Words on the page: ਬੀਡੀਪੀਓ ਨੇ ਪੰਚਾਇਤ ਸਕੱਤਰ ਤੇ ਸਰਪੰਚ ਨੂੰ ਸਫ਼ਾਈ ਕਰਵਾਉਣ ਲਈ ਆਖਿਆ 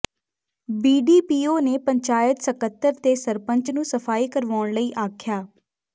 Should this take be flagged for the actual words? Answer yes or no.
no